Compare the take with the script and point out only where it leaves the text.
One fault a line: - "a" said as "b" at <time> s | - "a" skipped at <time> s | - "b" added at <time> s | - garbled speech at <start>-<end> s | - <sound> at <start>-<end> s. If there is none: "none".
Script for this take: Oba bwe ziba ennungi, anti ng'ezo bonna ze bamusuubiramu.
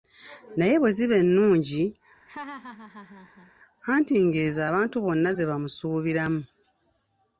- "Oba" said as "Naye" at 0.6 s
- laugh at 2.3-3.5 s
- "abantu" added at 4.7 s